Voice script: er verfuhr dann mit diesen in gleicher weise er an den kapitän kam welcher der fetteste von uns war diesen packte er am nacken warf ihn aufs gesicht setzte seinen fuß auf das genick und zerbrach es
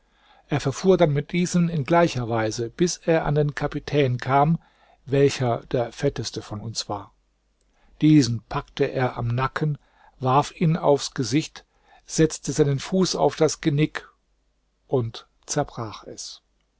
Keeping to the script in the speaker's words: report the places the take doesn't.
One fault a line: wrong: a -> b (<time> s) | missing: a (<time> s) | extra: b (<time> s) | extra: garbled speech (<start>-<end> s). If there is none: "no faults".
extra: bis (2.7 s)